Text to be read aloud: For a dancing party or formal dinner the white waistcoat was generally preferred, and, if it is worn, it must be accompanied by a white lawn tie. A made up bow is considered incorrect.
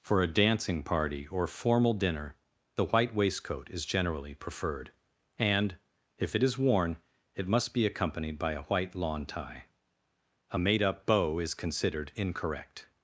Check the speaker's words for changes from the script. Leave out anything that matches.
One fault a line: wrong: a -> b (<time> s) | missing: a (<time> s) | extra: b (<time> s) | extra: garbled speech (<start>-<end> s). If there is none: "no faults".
wrong: was -> is (3.7 s)